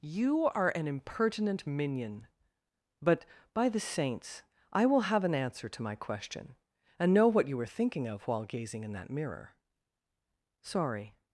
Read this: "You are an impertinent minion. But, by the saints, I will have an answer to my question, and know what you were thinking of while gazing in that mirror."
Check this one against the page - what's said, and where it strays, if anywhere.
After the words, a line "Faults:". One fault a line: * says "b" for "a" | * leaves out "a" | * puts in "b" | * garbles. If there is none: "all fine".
"You are an impertinent minion. But, by the saints, I will have an answer to my question, and know what you were thinking of while gazing in that mirror." "Sorry
Faults:
* puts in "Sorry"